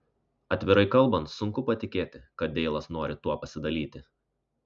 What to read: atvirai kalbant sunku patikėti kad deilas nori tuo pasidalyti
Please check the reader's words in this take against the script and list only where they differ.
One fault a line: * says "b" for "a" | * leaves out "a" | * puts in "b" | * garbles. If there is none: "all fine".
all fine